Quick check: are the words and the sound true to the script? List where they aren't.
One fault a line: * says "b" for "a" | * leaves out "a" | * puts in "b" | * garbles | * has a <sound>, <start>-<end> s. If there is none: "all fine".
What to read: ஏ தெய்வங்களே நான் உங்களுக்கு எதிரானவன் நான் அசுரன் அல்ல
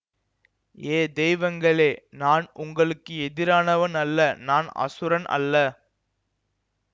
* puts in "அல்ல"